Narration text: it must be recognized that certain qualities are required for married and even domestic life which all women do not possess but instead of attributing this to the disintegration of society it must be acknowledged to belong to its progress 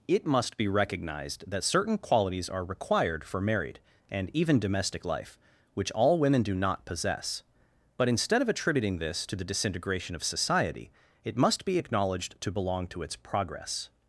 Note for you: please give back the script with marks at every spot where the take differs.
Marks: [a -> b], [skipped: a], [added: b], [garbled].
it must be recognized that certain qualities are required for married and even domestic life which all women do not possess but instead of attributing this to the disintegration of society it must be acknowledged to belong to its progress